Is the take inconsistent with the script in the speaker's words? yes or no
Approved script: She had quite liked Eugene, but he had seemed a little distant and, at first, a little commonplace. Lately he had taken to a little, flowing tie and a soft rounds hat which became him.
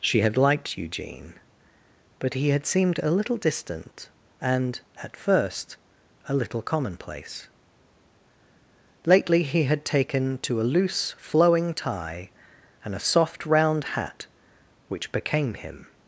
yes